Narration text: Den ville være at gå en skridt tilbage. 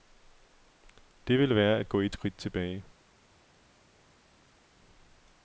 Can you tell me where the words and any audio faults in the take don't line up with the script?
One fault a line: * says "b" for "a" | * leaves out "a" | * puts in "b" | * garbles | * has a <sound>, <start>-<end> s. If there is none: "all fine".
* says "Det" for "Den"
* says "et" for "en"